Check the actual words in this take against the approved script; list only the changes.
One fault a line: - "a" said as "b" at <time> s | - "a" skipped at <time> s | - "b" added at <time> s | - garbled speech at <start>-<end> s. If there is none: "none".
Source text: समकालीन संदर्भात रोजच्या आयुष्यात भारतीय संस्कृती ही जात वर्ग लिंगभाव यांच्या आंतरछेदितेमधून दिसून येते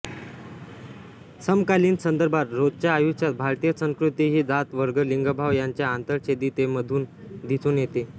none